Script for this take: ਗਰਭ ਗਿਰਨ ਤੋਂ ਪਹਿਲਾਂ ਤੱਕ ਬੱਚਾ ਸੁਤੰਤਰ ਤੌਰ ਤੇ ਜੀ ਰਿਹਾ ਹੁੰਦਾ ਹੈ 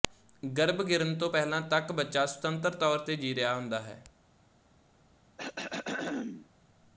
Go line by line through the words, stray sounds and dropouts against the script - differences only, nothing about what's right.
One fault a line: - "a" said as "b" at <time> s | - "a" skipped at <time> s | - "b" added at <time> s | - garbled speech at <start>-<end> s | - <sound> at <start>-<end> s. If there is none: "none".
- throat clearing at 5.4-6.5 s